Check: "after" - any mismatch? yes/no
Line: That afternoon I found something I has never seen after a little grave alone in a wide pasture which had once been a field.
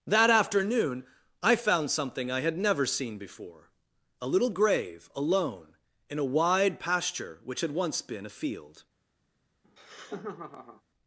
yes